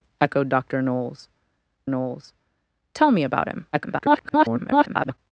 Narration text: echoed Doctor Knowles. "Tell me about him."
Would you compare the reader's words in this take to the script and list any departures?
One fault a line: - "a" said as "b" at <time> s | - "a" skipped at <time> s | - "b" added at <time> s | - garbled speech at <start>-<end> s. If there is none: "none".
- "Knowles" added at 1.9 s
- garbled speech at 3.7-5.2 s